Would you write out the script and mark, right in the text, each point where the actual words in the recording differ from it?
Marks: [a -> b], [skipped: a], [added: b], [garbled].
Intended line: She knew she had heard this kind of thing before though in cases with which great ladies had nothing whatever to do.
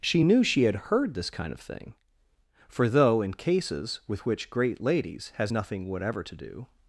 She knew she had heard this kind of thing [before -> for] though in cases with which great ladies [had -> has] nothing whatever to do.